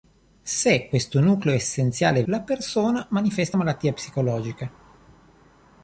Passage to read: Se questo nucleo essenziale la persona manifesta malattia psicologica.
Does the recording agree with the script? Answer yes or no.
yes